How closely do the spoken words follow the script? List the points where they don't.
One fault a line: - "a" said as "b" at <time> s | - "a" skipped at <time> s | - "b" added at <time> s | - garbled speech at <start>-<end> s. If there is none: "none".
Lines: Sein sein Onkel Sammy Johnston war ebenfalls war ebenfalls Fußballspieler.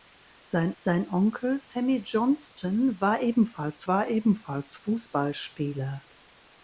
none